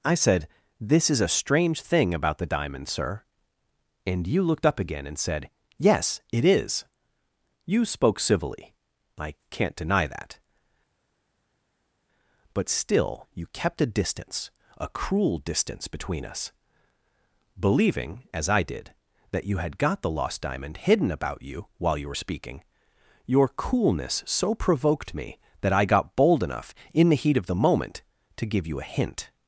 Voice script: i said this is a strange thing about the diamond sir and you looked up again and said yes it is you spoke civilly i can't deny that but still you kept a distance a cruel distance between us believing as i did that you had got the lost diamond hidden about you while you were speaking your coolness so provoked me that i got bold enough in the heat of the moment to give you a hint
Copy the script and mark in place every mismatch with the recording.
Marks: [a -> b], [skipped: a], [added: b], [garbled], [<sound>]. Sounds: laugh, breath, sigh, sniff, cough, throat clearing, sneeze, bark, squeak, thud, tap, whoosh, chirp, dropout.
i said this is a strange thing about the diamond sir and you looked up again and said yes it is you spoke civilly i can't deny that but still you kept a distance a cruel distance between us believing as i did that you had got the lost diamond hidden about you while you were speaking your coolness so provoked me that i got bold enough in the heat of the moment to give you a hint